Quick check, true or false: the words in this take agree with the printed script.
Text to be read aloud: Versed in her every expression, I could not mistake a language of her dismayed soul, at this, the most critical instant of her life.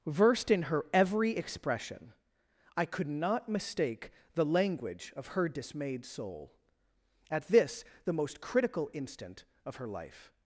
false